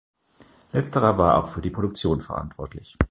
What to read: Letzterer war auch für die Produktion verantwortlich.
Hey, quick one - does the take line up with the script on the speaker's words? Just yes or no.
yes